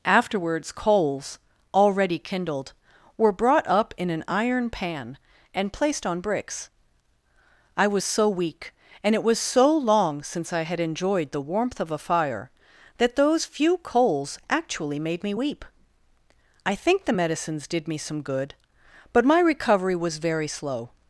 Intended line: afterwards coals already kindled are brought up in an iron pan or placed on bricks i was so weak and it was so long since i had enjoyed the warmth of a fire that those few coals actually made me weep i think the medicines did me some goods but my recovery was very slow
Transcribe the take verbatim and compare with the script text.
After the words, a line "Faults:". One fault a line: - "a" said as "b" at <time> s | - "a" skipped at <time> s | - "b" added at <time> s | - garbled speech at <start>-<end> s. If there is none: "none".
afterwards coals already kindled were brought up in an iron pan and placed on bricks i was so weak and it was so long since i had enjoyed the warmth of a fire that those few coals actually made me weep i think the medicines did me some good but my recovery was very slow
Faults:
- "are" said as "were" at 3.2 s
- "or" said as "and" at 5.5 s
- "goods" said as "good" at 18.2 s